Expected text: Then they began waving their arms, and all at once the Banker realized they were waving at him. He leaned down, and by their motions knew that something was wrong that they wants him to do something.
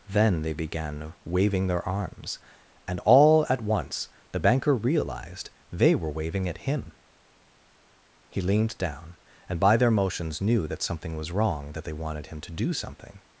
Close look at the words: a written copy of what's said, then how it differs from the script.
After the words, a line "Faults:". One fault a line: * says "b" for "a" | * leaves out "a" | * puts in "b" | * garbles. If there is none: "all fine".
Then they began waving their arms, and all at once the Banker realized they were waving at him. He leaned down, and by their motions knew that something was wrong that they wanted him to do something.
Faults:
* says "wanted" for "wants"